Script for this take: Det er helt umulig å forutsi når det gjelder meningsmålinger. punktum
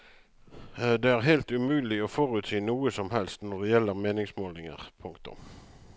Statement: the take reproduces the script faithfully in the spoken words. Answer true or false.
false